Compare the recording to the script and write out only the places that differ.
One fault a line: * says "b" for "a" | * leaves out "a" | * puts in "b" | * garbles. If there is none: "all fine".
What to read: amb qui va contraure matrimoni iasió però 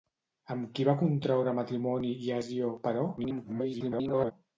* garbles